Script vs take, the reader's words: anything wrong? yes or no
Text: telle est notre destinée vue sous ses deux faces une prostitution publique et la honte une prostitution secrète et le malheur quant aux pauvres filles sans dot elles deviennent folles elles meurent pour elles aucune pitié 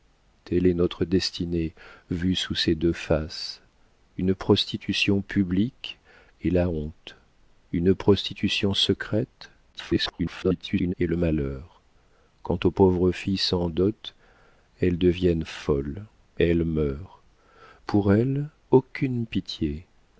yes